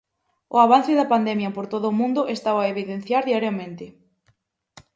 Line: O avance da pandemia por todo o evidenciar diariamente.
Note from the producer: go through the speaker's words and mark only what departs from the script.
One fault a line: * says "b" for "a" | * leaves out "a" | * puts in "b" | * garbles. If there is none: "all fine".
* puts in "mundo estao a"